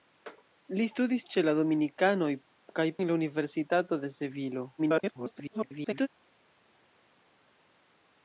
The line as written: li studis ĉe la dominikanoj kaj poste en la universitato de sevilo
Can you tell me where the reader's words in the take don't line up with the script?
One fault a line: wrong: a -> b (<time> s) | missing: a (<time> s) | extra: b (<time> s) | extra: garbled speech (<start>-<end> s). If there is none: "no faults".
missing: poste (2.9 s)
extra: garbled speech (4.8-6.1 s)